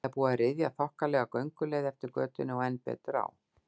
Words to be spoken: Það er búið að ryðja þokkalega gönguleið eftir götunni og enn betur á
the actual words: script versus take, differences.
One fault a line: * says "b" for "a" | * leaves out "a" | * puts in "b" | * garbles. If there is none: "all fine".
all fine